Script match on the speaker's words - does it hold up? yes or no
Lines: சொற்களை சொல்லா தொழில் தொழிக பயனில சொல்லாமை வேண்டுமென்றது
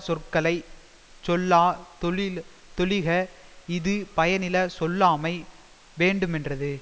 no